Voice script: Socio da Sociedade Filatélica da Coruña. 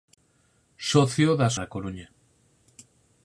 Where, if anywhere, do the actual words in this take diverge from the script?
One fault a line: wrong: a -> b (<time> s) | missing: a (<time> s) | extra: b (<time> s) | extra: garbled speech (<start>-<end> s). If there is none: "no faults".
missing: Sociedade Filatélica (1.5 s)